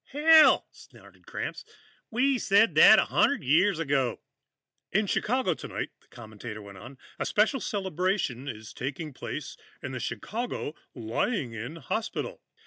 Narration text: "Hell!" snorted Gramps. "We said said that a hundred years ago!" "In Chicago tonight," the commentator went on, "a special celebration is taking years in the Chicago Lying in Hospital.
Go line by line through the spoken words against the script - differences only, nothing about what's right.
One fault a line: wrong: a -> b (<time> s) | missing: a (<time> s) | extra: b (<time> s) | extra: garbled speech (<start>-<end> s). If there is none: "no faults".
missing: said (2.7 s)
wrong: years -> place (9.1 s)